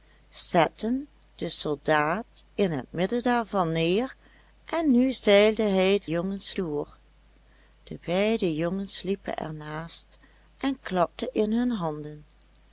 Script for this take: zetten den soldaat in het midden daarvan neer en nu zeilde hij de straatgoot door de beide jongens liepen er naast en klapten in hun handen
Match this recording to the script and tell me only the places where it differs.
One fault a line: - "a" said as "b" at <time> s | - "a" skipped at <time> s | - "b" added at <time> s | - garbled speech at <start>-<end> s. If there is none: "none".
- "straatgoot" said as "jongens" at 6.1 s